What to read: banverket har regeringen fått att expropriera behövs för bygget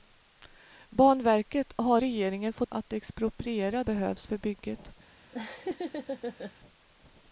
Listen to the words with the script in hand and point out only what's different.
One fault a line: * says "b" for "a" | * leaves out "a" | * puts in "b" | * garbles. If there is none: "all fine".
all fine